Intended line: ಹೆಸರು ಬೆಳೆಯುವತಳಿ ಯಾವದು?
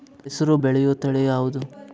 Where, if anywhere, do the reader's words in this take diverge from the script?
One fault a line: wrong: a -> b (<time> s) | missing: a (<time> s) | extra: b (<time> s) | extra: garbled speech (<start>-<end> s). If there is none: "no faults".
no faults